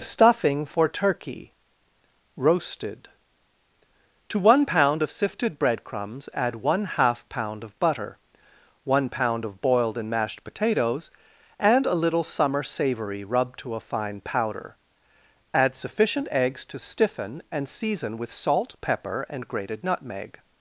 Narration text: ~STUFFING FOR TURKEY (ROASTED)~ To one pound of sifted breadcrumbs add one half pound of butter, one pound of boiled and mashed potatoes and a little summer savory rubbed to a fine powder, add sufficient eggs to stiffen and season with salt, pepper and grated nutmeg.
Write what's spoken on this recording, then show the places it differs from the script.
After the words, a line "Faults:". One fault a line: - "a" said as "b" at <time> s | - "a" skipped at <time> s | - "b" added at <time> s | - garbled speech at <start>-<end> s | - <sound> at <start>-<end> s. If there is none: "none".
~STUFFING FOR TURKEY (ROASTED)~ To one pound of sifted breadcrumbs add one half pound of butter, one pound of boiled and mashed potatoes and a little summer savory rubbed to a fine powder, add sufficient eggs to stiffen and season with salt, pepper and grated nutmeg.
Faults:
none